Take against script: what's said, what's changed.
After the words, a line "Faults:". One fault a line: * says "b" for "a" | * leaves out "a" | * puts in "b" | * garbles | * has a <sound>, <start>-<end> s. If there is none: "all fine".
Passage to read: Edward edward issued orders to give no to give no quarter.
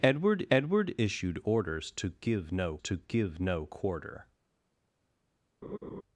Edward edward issued orders to give no to give no quarter.
Faults:
* has a laugh, 5.6-6.0 s